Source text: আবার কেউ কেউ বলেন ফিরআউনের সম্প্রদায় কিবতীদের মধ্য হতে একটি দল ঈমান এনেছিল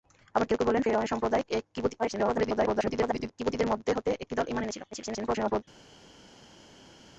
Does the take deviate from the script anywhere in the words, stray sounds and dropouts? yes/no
yes